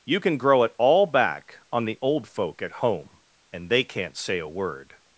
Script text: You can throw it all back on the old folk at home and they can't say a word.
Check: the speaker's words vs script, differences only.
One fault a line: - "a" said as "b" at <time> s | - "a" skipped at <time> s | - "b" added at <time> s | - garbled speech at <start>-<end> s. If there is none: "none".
- "throw" said as "grow" at 0.4 s